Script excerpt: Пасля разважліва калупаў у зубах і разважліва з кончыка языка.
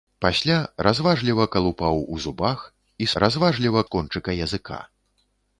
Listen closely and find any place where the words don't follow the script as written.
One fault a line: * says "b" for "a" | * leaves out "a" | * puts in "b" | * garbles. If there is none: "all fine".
all fine